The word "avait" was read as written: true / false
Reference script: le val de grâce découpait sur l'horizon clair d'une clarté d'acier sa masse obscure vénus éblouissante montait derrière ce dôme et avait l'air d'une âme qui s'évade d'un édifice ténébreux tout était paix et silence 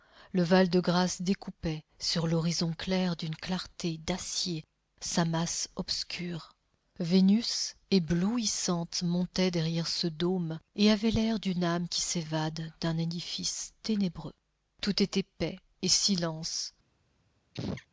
true